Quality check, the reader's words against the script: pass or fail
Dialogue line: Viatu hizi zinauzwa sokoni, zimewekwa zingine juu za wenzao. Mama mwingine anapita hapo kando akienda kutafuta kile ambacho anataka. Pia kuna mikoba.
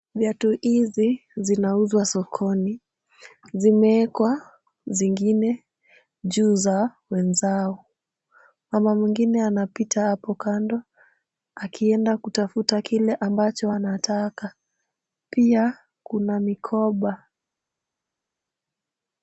pass